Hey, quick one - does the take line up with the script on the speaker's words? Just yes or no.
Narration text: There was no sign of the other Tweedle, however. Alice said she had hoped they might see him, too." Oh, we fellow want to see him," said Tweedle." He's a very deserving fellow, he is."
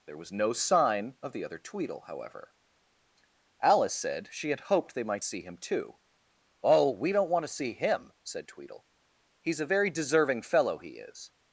no